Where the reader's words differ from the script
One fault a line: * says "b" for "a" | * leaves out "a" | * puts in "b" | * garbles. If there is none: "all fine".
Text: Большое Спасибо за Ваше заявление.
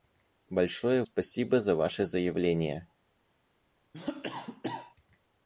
all fine